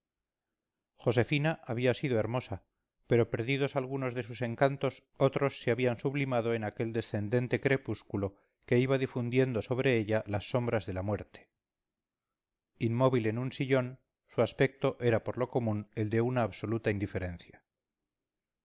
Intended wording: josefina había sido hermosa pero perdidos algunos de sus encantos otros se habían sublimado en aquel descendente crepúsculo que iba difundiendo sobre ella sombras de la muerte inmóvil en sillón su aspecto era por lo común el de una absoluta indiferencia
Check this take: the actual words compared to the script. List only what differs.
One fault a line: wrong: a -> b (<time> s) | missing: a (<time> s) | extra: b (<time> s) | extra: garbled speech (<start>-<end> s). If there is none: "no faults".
extra: las (10.2 s)
extra: un (13.4 s)